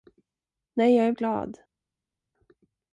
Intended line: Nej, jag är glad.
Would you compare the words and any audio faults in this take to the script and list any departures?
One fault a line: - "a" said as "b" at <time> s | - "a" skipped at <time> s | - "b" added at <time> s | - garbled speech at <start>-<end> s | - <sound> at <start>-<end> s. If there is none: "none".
none